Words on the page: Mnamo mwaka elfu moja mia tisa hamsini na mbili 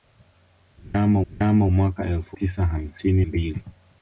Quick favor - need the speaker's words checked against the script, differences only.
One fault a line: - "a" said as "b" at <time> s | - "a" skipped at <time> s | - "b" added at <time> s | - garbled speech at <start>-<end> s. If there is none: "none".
- "mnamo" added at 1.3 s
- "moja mia" skipped at 2.4 s
- "na" skipped at 3.2 s